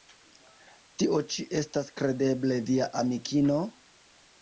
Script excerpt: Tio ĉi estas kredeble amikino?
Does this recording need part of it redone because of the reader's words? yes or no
yes